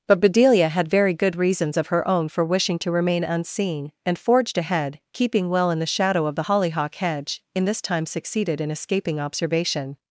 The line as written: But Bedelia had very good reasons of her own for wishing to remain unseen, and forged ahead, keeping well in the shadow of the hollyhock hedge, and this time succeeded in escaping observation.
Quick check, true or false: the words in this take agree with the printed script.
false